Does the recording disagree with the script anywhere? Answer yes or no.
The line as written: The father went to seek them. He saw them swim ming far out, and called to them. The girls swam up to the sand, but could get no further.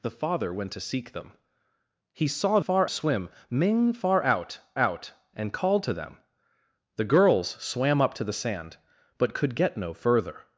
yes